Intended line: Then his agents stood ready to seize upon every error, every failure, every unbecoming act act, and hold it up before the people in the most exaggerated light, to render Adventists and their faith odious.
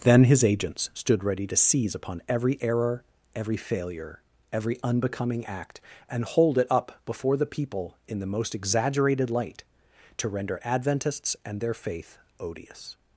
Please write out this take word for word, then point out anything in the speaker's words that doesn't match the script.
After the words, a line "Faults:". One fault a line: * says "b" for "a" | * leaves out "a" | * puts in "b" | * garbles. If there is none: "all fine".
Then his agents stood ready to seize upon every error, every failure, every unbecoming act, and hold it up before the people in the most exaggerated light, to render Adventists and their faith odious.
Faults:
* leaves out "act"